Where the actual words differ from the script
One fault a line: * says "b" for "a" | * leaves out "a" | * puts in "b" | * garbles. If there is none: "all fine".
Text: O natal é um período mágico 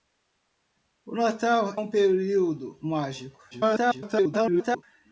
* leaves out "é"
* garbles